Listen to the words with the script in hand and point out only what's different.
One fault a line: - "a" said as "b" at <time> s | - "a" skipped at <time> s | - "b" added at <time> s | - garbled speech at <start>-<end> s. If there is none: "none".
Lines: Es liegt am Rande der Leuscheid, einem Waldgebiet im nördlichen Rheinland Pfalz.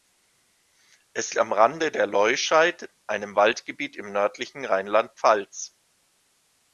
- "liegt" skipped at 1.4 s